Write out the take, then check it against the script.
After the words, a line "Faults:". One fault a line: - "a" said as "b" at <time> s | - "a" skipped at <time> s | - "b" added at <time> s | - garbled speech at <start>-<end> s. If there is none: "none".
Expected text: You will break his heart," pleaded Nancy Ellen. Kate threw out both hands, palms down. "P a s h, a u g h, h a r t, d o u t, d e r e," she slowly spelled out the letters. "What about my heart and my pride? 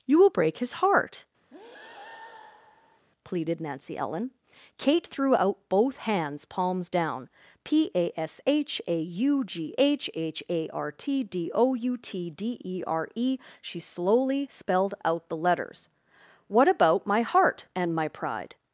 You will break his heart," pleaded Nancy Ellen. Kate threw out both hands, palms down. "P a s h, a u g h, h a r t, d o u t, d e r e," she slowly spelled out the letters. "What about my heart and my pride?
Faults:
none